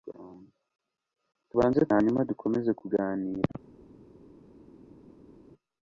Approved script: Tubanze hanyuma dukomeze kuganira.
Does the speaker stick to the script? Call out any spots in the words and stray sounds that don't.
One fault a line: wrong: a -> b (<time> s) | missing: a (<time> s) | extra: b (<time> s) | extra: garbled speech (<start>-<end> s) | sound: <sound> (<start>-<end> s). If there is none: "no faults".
no faults